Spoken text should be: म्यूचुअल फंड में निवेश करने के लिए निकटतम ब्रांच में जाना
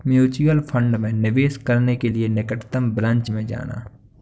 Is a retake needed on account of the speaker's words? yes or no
no